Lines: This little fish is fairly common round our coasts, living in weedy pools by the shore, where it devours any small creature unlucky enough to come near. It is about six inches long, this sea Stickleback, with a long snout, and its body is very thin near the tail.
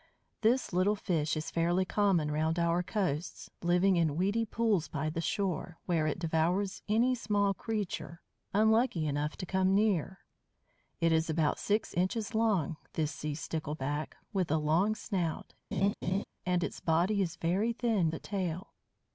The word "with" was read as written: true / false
true